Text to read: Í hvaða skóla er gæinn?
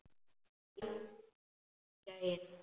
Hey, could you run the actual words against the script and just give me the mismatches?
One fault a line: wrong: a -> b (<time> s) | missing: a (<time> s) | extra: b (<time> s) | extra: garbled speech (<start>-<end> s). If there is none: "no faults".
missing: hvaða skóla (0.8 s)